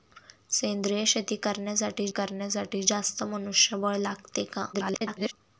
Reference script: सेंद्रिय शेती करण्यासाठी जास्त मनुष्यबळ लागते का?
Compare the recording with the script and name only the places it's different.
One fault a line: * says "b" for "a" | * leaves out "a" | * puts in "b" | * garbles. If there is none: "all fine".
* puts in "करण्यासाठी"
* garbles